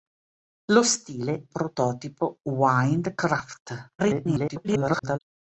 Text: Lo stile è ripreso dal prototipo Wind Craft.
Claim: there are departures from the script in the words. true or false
true